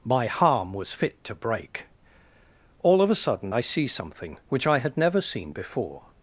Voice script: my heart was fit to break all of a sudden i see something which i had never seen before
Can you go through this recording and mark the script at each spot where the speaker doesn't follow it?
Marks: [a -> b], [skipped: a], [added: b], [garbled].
my [heart -> harm] was fit to break all of a sudden i see something which i had never seen before